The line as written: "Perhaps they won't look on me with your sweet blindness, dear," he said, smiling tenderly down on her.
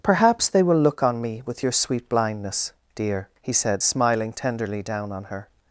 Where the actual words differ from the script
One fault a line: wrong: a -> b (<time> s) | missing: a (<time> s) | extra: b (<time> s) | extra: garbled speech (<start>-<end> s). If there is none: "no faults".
wrong: won't -> will (0.6 s)